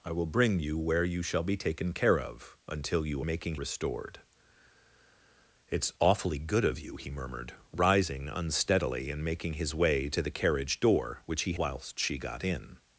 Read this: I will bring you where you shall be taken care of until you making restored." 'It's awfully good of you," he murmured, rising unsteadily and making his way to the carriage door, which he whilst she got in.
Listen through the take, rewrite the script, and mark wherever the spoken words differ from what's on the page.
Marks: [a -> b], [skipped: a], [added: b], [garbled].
I will bring you where you shall be taken care of until you making restored." 'It's awfully good of you," he murmured, rising unsteadily and making his way to the carriage door, which he whilst she got in.